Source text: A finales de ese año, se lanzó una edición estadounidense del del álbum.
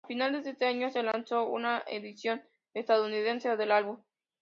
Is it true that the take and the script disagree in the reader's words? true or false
true